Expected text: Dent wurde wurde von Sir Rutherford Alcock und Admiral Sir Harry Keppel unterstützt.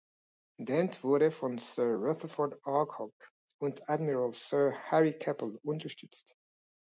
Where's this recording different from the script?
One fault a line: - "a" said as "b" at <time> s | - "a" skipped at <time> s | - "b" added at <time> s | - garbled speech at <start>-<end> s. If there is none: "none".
- "wurde" skipped at 1.3 s